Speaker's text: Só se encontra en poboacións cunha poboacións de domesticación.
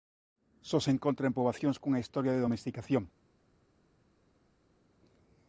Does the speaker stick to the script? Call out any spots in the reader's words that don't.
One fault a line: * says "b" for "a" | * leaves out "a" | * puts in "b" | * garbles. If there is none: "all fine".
* says "historia" for "poboacións"